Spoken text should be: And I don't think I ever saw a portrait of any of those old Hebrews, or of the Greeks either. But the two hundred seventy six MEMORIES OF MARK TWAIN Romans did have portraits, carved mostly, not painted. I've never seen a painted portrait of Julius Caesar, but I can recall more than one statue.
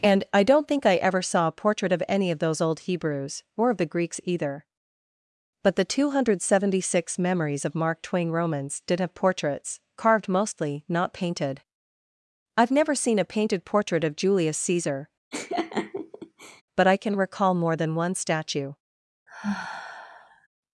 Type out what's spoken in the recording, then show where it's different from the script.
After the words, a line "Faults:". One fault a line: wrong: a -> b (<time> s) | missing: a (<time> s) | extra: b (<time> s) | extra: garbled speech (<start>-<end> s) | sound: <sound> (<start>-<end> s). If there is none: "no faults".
And I don't think I ever saw a portrait of any of those old Hebrews, or of the Greeks either. But the two hundred seventy six MEMORIES OF MARK TWAIN Romans did have portraits, carved mostly, not painted. I've never seen a painted portrait of Julius Caesar, but I can recall more than one statue.
Faults:
sound: laugh (15.3-16.6 s)
sound: sigh (19.3-20.5 s)